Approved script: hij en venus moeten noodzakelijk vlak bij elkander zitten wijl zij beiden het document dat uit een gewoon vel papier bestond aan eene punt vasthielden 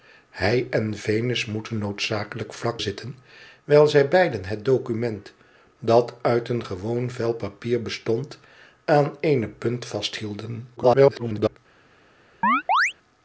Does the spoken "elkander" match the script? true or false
false